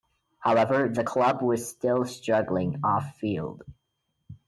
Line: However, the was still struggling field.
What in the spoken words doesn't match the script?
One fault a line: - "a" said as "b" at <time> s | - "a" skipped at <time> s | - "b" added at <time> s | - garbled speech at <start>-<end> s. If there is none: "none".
- "club" added at 1.0 s
- "off" added at 2.8 s